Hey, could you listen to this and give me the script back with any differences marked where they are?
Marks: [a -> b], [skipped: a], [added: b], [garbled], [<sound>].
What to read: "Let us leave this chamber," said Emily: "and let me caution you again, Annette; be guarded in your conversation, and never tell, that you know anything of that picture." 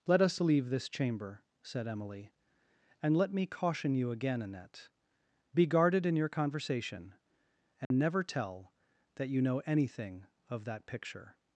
"Let us leave this chamber," said Emily: "and let me caution you again, Annette; be guarded in your conversation, and [dropout] never tell, that you know anything of that picture."